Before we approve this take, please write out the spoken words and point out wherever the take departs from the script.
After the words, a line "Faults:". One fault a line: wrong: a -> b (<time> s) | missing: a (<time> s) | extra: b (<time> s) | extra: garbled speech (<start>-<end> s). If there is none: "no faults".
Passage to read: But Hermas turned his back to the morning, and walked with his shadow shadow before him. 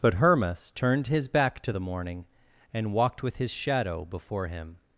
But Hermas turned his back to the morning, and walked with his shadow before him.
Faults:
missing: shadow (4.0 s)